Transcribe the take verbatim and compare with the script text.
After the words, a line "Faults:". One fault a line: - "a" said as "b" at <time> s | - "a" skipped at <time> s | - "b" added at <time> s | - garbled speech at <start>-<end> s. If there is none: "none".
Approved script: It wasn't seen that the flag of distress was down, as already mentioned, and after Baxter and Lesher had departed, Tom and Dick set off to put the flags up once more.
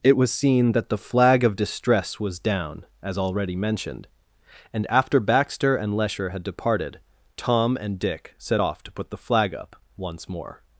It was seen that the flag of distress was down, as already mentioned, and after Baxter and Lesher had departed, Tom and Dick set off to put the flag up once more.
Faults:
- "wasn't" said as "was" at 0.2 s
- "flags" said as "flag" at 9.2 s